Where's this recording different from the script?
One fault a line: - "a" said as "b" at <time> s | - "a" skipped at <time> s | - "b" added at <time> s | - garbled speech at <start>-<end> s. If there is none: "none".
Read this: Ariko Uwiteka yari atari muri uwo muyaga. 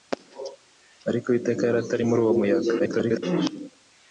- garbled speech at 2.8-3.2 s